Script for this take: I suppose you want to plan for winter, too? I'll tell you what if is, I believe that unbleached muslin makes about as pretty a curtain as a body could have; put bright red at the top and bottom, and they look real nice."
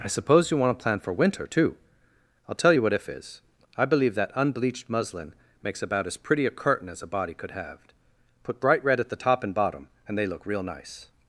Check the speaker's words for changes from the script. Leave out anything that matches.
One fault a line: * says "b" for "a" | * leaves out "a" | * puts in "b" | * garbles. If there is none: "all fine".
all fine